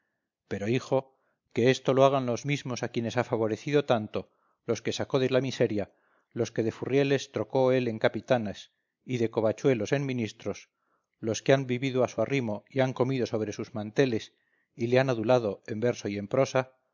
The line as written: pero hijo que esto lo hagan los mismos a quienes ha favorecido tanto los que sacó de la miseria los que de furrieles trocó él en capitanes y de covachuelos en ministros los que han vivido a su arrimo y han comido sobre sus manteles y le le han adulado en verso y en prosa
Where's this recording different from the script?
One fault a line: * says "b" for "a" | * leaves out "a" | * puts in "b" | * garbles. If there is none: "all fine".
* leaves out "le"